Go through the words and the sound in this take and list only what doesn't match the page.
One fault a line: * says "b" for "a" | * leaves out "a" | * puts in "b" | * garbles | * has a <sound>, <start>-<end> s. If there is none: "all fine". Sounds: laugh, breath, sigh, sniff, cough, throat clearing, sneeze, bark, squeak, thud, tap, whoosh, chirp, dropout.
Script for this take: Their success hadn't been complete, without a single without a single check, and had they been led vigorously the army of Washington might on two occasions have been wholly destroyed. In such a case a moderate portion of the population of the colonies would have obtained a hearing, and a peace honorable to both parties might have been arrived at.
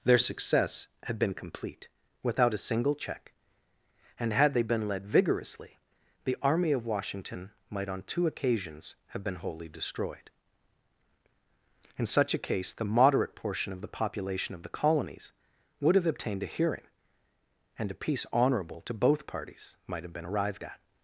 * says "had" for "hadn't"
* leaves out "without a single"
* says "the" for "a"